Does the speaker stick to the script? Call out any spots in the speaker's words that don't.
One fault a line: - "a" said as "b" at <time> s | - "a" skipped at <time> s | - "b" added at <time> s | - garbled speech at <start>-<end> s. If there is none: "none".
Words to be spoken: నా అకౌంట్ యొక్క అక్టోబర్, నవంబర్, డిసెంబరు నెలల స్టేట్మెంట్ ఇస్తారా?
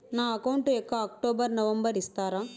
- "డిసెంబరు నెలల స్టేట్మెంట్" skipped at 1.9 s